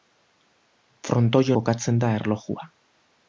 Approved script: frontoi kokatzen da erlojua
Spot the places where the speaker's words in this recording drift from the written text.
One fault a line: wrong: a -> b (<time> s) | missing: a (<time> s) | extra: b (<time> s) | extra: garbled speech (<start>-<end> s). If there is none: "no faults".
no faults